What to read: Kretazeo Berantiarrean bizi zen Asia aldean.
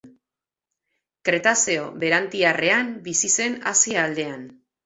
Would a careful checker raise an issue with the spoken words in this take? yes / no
no